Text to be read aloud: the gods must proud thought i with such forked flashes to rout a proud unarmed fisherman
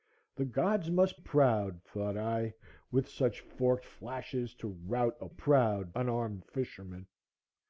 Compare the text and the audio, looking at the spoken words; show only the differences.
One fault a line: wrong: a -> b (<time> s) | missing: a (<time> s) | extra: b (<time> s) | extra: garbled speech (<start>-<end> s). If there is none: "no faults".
no faults